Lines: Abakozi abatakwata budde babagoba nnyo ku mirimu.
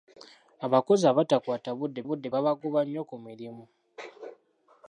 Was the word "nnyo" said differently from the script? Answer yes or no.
no